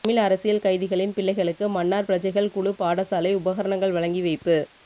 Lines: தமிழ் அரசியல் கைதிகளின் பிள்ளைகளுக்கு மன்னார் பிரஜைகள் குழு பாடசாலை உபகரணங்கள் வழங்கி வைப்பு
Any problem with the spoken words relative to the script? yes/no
no